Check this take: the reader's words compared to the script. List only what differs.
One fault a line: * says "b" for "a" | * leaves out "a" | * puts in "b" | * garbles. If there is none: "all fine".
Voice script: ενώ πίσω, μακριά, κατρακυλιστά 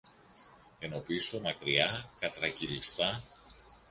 all fine